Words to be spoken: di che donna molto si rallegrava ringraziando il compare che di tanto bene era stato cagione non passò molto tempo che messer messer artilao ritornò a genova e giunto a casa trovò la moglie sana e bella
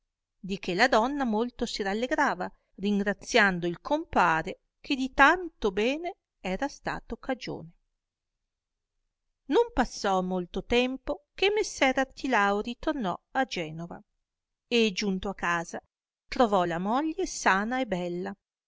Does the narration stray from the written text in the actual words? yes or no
yes